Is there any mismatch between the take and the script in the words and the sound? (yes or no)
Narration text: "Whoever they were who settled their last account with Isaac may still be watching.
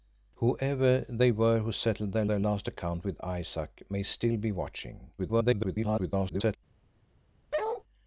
yes